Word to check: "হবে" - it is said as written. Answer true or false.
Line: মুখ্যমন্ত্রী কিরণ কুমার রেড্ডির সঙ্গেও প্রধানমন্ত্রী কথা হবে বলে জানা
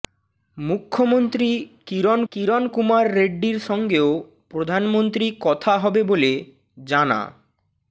true